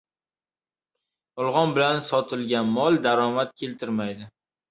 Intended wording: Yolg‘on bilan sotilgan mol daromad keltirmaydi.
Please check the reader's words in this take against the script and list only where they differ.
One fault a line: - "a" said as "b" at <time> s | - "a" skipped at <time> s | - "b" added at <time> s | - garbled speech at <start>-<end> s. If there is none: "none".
none